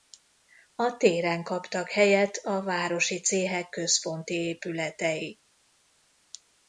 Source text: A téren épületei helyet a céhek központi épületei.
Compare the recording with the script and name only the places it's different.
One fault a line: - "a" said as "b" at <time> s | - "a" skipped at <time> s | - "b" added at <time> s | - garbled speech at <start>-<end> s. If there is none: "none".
- "épületei" said as "kaptak" at 1.4 s
- "városi" added at 2.6 s